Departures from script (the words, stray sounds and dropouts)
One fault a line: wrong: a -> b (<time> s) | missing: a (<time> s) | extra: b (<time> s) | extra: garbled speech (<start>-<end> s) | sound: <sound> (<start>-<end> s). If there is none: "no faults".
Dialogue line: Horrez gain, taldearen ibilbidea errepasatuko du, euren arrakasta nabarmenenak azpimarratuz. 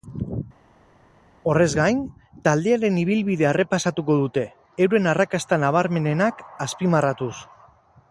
wrong: du -> dute (4.2 s)